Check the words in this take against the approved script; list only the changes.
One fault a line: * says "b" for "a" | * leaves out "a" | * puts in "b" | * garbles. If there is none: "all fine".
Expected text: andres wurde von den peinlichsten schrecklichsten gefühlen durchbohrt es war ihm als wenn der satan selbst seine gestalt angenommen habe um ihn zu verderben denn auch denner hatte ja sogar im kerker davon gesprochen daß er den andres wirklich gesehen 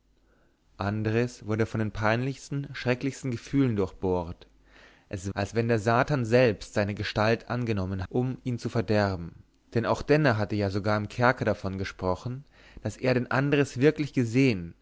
* leaves out "war ihm"
* leaves out "habe"